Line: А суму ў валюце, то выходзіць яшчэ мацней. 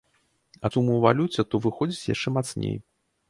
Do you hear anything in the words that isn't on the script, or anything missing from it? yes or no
no